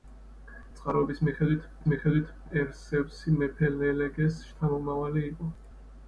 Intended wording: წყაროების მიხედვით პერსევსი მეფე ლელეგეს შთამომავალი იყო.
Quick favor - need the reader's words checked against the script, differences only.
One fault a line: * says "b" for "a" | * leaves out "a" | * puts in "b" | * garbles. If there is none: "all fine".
* puts in "მიხედვით"